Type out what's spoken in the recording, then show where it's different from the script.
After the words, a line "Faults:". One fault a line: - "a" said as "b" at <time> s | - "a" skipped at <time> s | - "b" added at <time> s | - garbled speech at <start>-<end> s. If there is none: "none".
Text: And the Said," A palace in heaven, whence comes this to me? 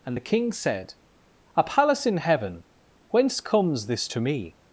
And the King said," A palace in heaven, whence comes this to me?
Faults:
- "King" added at 0.2 s